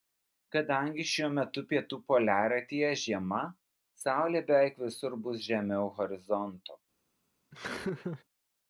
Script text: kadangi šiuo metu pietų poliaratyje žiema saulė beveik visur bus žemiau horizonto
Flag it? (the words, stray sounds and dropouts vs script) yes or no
yes